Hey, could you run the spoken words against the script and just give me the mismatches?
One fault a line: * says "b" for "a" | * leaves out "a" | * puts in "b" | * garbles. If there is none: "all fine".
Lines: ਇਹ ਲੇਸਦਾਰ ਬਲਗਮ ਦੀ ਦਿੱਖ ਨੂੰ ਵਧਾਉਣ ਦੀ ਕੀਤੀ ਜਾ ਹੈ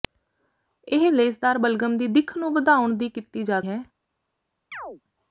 all fine